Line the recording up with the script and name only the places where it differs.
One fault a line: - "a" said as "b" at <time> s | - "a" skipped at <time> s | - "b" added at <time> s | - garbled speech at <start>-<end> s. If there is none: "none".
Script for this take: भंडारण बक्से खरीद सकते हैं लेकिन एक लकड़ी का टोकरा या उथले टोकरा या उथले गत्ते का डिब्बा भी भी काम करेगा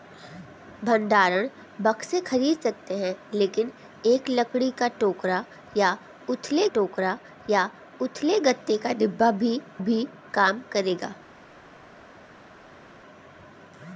none